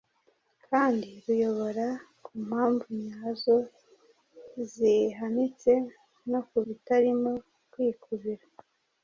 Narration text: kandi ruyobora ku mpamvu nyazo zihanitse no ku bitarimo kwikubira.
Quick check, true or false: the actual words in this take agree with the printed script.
true